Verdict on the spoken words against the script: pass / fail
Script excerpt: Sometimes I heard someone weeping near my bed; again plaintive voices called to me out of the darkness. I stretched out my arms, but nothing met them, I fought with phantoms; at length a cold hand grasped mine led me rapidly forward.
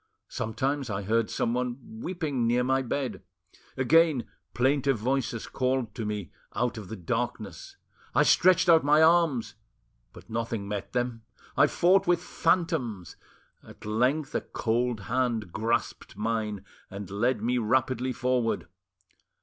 fail